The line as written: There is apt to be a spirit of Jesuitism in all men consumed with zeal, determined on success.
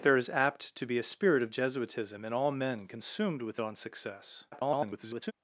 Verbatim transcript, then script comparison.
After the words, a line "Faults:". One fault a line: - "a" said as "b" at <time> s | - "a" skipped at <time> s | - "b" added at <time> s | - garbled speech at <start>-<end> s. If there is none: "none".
There is apt to be a spirit of Jesuitism in all men consumed with on success. [garbled]
Faults:
- "zeal determined" skipped at 3.6 s
- garbled speech at 4.5-5.3 s